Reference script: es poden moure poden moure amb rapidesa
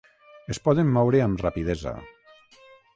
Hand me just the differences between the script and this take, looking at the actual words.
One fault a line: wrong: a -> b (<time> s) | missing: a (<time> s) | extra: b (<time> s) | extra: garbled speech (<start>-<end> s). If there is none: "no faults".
missing: poden moure (1.2 s)